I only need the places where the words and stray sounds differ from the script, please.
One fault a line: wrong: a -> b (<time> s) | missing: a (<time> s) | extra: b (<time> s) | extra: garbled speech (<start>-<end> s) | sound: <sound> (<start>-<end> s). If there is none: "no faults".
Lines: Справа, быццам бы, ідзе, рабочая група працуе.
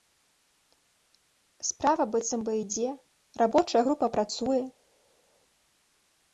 no faults